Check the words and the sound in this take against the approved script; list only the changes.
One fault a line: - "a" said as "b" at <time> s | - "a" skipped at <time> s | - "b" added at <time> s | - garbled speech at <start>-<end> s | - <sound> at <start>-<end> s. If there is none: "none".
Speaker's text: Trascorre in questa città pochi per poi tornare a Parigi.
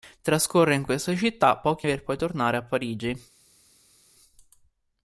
none